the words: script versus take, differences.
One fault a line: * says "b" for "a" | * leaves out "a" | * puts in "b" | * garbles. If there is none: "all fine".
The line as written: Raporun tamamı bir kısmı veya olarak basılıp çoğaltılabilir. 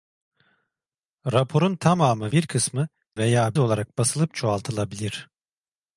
all fine